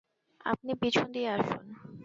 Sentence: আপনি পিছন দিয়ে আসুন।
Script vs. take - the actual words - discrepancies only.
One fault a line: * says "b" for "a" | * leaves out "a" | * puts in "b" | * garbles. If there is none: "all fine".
all fine